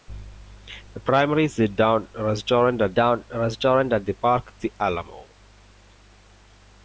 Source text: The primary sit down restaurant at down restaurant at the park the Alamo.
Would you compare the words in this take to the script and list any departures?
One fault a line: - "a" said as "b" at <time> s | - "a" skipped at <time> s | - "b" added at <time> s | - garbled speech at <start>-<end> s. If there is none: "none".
none